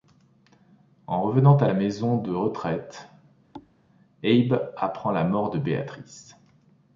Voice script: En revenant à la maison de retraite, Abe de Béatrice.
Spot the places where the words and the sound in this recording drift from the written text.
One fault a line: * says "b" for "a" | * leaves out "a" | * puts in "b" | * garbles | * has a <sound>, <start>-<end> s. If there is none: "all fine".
* has a thud, 3.5-3.7 s
* puts in "apprend la mort"